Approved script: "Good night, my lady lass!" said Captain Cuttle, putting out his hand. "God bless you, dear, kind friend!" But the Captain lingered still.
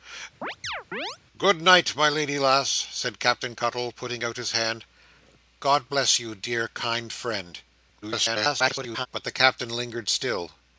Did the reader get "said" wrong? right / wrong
right